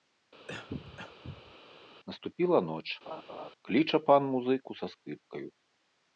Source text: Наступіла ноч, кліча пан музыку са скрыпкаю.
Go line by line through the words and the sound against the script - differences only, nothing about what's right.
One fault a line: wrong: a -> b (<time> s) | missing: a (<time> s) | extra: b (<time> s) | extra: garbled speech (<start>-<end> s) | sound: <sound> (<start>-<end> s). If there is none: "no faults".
sound: cough (0.5-1.6 s)
sound: laugh (3.1-3.5 s)